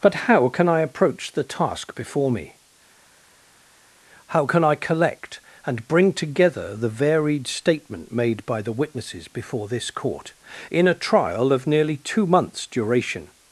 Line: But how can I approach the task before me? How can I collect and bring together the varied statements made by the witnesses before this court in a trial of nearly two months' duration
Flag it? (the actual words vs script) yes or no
yes